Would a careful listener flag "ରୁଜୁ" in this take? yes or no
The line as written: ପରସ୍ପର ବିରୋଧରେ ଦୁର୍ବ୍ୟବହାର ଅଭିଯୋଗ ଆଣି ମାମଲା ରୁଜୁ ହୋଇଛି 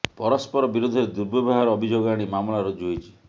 no